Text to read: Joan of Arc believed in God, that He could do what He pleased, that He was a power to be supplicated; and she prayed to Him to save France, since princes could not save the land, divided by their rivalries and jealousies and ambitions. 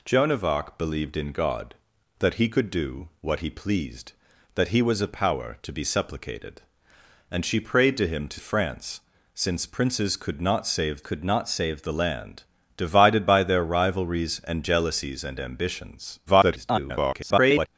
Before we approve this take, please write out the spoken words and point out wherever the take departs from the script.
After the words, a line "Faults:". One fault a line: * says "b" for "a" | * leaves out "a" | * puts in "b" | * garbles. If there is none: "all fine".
Joan of Arc believed in God, that He could do what He pleased, that He was a power to be supplicated; and she prayed to Him to France, since princes could not save could not save the land, divided by their rivalries and jealousies and ambitions. [garbled]
Faults:
* leaves out "save"
* puts in "could not save"
* garbles